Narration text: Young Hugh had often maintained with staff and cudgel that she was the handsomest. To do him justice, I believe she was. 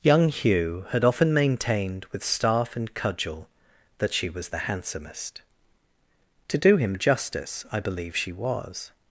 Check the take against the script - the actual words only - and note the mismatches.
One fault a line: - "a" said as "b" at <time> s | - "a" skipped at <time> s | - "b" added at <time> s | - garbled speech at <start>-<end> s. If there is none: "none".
none